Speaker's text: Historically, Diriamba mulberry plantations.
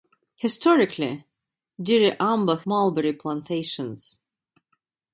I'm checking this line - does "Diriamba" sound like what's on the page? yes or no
yes